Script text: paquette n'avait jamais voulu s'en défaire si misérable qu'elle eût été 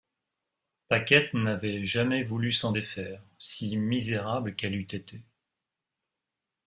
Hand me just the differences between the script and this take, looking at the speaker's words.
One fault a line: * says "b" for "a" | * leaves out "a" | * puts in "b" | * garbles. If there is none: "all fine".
all fine